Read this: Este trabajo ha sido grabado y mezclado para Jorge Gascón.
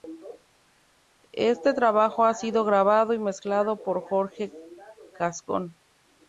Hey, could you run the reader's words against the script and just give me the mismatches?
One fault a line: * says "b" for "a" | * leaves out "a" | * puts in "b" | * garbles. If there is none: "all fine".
* says "por" for "para"